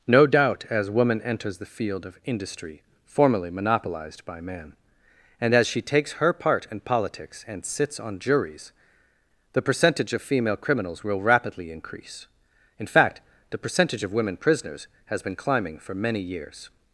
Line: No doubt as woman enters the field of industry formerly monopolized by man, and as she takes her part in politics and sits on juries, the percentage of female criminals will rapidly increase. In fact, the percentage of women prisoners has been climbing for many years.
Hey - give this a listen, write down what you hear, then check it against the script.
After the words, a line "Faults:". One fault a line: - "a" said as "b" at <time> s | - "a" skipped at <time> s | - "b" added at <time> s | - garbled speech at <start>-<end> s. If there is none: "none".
No doubt as woman enters the field of industry formerly monopolized by man, and as she takes her part in politics and sits on juries, the percentage of female criminals will rapidly increase. In fact, the percentage of women prisoners has been climbing for many years.
Faults:
none